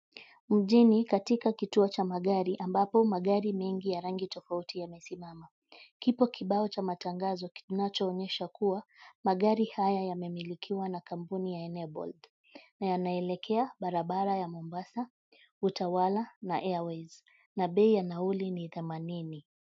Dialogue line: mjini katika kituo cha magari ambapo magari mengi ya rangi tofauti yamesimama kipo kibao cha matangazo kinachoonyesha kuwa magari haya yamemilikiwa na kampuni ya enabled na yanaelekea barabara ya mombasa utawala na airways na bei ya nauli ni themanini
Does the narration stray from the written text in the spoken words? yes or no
no